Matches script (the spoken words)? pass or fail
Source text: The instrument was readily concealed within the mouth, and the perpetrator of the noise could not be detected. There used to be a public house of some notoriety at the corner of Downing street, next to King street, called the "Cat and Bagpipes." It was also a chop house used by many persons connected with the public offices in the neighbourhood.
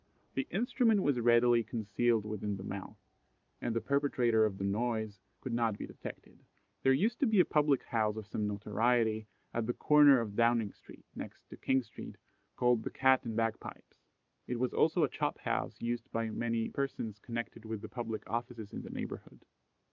pass